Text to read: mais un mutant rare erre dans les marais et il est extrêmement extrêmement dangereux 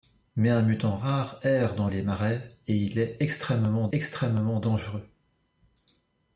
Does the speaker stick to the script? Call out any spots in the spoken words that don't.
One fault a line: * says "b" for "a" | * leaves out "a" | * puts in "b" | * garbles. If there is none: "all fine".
all fine